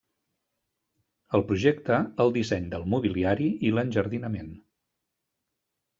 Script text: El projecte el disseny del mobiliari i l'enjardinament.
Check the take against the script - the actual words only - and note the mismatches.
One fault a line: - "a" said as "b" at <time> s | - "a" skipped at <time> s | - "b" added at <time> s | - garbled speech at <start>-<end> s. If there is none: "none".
none